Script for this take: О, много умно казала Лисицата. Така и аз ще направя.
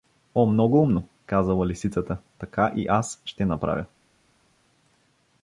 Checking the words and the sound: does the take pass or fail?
pass